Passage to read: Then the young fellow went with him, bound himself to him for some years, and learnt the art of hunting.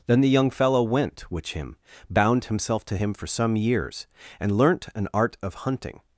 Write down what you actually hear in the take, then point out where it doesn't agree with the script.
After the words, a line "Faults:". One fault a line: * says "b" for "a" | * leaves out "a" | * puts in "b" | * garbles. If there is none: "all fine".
Then the young fellow went which him, bound himself to him for some years, and learnt an art of hunting.
Faults:
* says "which" for "with"
* says "an" for "the"